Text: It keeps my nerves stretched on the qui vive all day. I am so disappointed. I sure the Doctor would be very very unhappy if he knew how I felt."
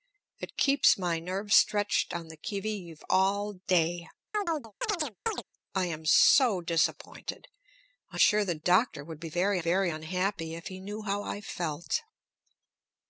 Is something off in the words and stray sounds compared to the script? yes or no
yes